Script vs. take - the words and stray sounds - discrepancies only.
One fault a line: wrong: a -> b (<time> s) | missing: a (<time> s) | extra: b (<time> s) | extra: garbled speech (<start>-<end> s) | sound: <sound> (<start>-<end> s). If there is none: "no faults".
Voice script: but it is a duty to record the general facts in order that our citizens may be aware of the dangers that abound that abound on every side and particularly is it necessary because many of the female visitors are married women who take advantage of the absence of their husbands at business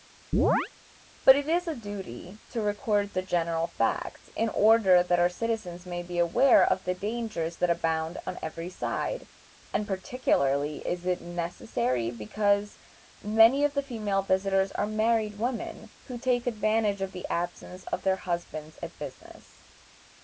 sound: chirp (0.3-0.7 s)
missing: that abound (8.2 s)